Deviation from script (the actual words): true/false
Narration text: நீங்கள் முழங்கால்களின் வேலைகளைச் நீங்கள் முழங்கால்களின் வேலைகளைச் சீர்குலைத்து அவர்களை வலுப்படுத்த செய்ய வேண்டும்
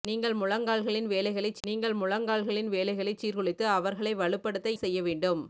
false